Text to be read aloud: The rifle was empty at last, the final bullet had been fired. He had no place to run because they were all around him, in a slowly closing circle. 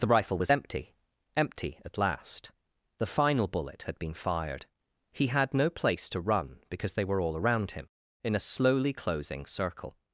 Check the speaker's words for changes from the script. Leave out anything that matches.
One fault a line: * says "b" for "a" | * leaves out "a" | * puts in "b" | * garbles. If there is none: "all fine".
* puts in "empty"